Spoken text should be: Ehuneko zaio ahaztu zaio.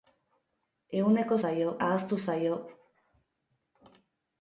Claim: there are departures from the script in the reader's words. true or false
false